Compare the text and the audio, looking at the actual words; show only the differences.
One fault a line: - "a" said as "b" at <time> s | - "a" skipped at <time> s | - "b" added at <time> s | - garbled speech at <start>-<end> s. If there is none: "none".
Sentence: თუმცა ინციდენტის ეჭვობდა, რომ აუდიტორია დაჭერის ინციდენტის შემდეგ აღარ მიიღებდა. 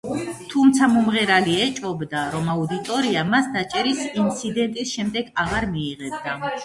- "ინციდენტის" said as "მომღერალი" at 0.9 s
- "მას" added at 3.3 s